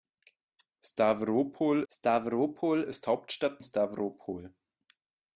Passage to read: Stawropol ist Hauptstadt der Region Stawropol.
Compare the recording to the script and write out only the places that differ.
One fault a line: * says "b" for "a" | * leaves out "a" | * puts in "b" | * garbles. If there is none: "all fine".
* puts in "stawropol"
* leaves out "der Region"